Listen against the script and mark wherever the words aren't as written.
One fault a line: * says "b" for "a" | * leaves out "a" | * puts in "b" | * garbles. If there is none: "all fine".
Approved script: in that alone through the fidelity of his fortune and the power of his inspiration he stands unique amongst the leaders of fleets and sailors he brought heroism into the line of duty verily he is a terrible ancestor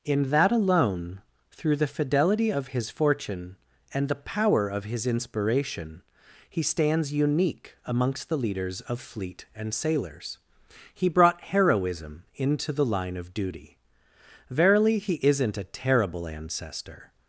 * says "fleet" for "fleets"
* says "isn't" for "is"